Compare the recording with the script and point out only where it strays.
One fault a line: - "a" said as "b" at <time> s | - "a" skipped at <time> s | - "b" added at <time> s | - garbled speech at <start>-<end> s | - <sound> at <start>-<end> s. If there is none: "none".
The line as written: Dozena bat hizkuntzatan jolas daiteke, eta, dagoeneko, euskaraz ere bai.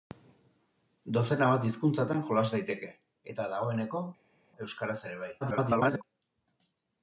- garbled speech at 5.4-6.0 s